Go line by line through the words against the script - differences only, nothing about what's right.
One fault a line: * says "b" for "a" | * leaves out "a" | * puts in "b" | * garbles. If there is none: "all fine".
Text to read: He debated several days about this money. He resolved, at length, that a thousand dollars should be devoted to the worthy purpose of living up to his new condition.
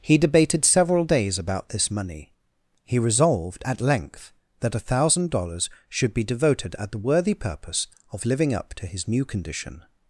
* says "at" for "to"